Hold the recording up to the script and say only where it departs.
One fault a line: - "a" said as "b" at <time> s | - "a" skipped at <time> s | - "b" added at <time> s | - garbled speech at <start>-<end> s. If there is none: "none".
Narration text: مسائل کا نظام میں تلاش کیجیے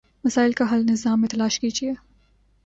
- "حل" added at 0.7 s